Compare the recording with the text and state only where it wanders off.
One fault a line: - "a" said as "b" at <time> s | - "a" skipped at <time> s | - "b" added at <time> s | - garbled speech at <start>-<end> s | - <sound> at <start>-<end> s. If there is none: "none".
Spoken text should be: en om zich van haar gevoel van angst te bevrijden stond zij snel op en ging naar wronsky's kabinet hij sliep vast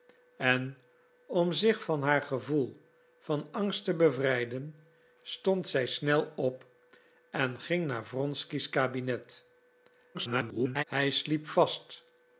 - garbled speech at 10.1-10.8 s